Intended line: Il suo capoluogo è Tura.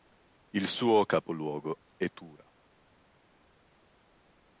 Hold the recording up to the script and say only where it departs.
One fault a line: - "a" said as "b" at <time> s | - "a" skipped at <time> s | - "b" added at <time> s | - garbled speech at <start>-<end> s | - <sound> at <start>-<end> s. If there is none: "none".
none